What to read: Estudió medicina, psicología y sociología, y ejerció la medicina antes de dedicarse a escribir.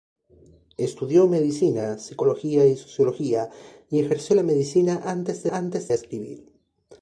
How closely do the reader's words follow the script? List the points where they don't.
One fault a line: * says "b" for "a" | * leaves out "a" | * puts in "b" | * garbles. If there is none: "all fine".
* says "antes" for "dedicarse"